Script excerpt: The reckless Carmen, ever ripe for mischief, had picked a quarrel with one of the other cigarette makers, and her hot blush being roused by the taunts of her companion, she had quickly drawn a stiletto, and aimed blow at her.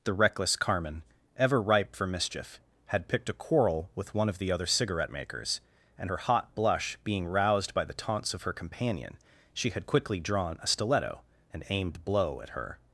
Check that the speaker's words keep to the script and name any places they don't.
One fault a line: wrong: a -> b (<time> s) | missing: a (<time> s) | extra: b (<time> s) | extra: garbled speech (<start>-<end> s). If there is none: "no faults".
no faults